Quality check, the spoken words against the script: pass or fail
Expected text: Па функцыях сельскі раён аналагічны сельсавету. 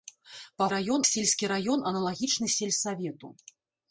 fail